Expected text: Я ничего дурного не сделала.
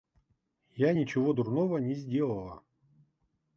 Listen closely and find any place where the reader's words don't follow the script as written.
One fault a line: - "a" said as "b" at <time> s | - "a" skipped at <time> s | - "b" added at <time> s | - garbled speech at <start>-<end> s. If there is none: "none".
none